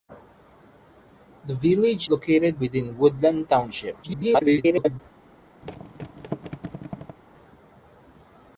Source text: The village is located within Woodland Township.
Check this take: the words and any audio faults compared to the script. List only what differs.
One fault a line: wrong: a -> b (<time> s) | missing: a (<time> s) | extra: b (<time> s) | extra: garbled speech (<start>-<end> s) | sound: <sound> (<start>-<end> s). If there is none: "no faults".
missing: is (2.1 s)
extra: garbled speech (4.0-5.0 s)
sound: thud (5.6-7.2 s)